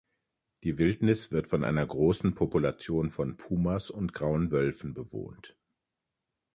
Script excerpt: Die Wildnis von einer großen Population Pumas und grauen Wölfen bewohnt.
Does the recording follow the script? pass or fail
fail